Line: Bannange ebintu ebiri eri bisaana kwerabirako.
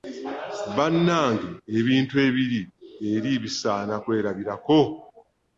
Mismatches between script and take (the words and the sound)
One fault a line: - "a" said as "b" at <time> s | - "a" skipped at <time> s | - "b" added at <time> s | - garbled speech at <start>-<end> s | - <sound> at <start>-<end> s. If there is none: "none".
none